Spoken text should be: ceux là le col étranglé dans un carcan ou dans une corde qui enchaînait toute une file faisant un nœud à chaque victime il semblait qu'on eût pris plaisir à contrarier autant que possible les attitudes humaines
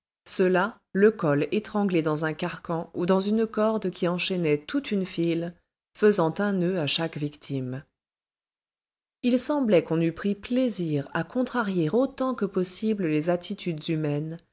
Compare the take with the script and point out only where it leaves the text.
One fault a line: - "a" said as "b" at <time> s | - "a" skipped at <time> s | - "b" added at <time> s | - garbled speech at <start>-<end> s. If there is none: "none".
none